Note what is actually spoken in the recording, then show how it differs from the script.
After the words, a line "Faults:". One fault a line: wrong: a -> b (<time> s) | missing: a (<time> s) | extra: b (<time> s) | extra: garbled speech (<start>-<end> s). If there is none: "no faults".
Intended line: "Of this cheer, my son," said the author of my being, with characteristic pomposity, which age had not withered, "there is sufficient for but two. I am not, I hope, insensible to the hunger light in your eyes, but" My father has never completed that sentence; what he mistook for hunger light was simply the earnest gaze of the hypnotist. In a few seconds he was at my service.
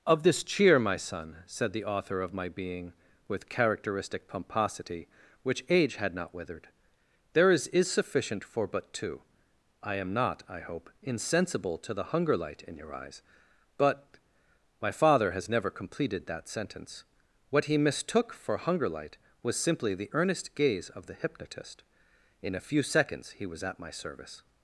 "Of this cheer, my son," said the author of my being, with characteristic pomposity, which age had not withered, "there is is sufficient for but two. I am not, I hope, insensible to the hunger light in your eyes, but" My father has never completed that sentence; what he mistook for hunger light was simply the earnest gaze of the hypnotist. In a few seconds he was at my service.
Faults:
extra: is (7.7 s)